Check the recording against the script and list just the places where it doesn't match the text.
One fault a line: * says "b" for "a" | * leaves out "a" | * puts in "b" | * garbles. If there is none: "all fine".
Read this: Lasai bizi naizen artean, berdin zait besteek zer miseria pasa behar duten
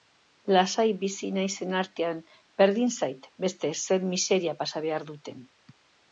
all fine